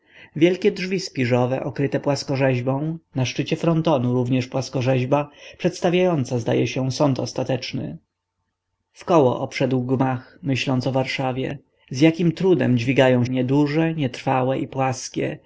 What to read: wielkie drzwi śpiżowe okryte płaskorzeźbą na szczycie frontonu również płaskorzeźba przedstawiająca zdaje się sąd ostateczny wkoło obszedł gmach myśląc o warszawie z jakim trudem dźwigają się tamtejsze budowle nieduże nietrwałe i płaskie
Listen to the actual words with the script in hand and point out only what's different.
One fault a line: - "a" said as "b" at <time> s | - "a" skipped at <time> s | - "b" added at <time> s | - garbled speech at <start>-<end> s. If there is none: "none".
- "się tamtejsze budowle" skipped at 13.2 s